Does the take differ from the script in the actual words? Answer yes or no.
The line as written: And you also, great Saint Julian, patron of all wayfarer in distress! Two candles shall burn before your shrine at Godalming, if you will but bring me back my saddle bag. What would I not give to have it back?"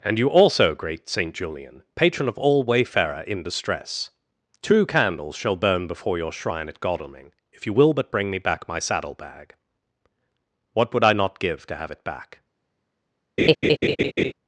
no